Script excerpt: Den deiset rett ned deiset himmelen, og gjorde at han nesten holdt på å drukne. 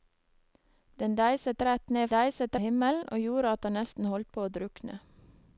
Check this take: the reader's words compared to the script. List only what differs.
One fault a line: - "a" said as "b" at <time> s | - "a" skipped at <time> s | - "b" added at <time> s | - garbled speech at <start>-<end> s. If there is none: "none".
none